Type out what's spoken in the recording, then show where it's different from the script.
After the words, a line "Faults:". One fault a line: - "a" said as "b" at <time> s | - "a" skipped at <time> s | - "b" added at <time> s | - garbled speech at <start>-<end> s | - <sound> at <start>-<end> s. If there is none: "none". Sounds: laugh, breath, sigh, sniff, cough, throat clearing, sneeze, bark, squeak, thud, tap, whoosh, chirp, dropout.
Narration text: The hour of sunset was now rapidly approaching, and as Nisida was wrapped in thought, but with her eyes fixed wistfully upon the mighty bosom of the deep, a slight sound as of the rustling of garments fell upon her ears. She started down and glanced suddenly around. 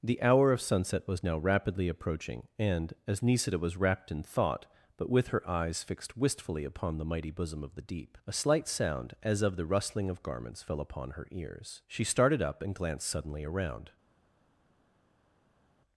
The hour of sunset was now rapidly approaching, and as Nisida was wrapped in thought, but with her eyes fixed wistfully upon the mighty bosom of the deep, a slight sound as of the rustling of garments fell upon her ears. She started up and glanced suddenly around.
Faults:
- "down" said as "up" at 12.4 s